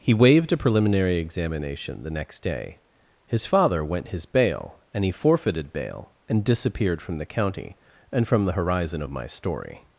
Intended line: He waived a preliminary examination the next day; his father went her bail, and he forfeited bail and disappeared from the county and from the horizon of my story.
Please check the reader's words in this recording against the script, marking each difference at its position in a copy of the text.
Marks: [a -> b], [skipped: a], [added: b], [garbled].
He waived a preliminary examination the next day; his father went [her -> his] bail, and he forfeited bail and disappeared from the county and from the horizon of my story.